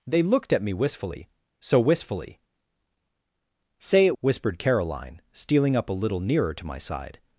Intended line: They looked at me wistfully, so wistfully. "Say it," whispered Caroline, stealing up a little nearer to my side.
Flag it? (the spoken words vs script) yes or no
no